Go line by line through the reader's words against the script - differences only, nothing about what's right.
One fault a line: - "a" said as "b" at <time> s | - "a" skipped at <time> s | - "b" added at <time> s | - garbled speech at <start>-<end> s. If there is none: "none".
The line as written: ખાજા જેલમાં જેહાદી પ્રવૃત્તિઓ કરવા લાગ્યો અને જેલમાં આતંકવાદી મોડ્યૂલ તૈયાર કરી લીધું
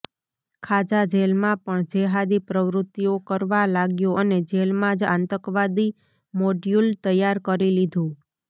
- "પણ" added at 1.6 s
- "જ" added at 5.0 s